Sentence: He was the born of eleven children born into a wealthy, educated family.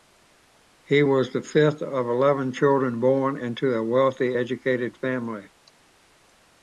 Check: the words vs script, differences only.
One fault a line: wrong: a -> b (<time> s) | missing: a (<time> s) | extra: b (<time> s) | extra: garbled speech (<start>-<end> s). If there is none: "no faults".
wrong: born -> fifth (1.4 s)